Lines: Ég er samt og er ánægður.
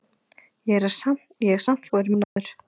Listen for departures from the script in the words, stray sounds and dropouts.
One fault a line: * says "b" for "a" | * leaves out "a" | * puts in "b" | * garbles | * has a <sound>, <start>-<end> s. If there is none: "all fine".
* has a dropout, 2.2-2.4 s